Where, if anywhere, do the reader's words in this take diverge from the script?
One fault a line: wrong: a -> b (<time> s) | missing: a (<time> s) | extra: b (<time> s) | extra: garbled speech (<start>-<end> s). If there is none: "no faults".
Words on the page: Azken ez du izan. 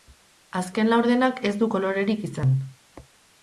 extra: laurdenak (0.9 s)
extra: kolorerik (1.8 s)